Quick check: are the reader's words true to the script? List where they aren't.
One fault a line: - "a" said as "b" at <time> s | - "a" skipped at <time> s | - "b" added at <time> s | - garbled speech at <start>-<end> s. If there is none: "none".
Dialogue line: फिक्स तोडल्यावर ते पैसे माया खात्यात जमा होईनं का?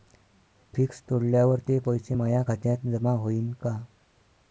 none